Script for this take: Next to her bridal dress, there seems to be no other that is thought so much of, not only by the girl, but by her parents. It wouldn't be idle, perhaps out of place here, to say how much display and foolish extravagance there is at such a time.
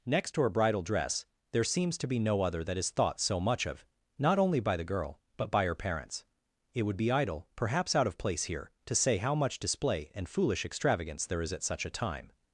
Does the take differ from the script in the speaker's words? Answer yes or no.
yes